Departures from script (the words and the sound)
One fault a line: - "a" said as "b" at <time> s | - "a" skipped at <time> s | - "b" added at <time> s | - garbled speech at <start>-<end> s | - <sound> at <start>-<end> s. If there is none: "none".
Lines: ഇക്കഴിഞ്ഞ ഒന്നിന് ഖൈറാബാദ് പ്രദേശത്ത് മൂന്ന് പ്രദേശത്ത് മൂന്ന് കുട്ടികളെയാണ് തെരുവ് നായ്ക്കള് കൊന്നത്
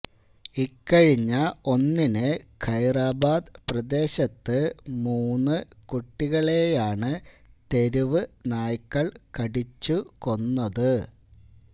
- "പ്രദേശത്ത് മൂന്ന്" skipped at 5.6 s
- "കടിച്ചു" added at 9.4 s